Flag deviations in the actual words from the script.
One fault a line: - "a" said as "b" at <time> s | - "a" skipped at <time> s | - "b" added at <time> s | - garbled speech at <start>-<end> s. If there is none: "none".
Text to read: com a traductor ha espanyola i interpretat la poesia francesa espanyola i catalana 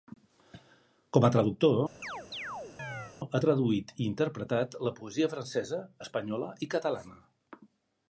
- "espanyola" said as "traduït" at 3.5 s